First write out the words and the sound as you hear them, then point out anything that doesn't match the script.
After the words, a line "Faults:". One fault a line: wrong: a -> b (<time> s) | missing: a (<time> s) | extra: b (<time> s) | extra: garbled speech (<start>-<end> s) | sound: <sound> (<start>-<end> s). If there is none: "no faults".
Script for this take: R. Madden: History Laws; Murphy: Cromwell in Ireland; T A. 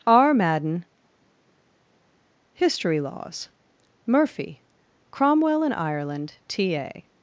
R. Madden: History Laws; Murphy: Cromwell in Ireland; T A.
Faults:
no faults